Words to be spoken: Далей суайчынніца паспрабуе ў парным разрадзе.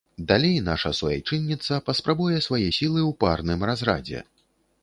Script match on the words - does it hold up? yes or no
no